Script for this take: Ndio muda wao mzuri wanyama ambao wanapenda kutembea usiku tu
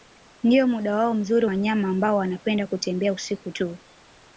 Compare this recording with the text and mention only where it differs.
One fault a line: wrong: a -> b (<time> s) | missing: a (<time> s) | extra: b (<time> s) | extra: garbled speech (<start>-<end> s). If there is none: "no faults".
no faults